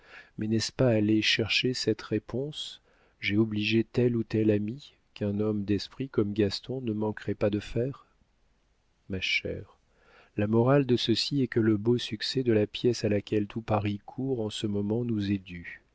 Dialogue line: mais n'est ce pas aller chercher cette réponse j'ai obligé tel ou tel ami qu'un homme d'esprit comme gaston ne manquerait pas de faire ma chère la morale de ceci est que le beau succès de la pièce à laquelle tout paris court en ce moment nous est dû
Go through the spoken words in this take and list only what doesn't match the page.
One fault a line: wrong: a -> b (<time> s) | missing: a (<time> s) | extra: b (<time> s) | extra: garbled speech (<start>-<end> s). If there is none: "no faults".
no faults